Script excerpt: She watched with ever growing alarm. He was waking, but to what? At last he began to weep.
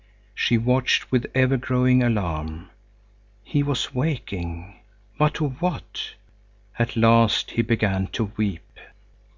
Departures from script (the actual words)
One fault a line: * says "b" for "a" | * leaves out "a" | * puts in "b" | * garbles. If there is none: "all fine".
all fine